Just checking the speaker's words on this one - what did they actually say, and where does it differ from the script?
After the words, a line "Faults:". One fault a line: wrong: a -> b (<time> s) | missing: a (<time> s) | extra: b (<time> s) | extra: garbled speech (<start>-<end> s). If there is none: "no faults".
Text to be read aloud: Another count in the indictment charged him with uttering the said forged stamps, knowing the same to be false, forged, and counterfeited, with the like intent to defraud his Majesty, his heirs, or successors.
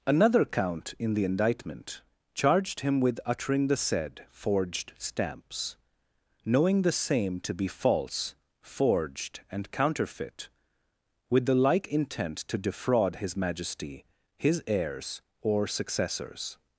Another count in the indictment charged him with uttering the said forged stamps, knowing the same to be false, forged, and counterfeit, with the like intent to defraud his Majesty, his heirs, or successors.
Faults:
wrong: counterfeited -> counterfeit (9.7 s)